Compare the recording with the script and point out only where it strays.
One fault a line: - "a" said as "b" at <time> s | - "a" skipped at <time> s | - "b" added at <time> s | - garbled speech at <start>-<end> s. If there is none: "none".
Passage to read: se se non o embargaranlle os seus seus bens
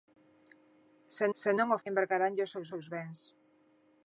none